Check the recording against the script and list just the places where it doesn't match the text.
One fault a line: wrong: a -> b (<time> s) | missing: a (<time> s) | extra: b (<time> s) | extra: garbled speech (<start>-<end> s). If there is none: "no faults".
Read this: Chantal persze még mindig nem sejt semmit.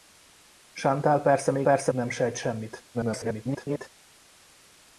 wrong: mindig -> persze (1.6 s)
extra: garbled speech (2.9-3.9 s)